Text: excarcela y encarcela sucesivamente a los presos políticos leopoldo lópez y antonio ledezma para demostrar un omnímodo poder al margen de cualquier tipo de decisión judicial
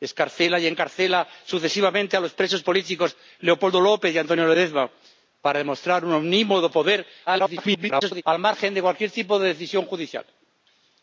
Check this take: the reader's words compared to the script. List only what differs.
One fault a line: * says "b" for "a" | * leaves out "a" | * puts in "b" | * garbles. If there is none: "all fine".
* garbles